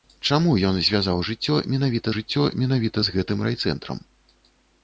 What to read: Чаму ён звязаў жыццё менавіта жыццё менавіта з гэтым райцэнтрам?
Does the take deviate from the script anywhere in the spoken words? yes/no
no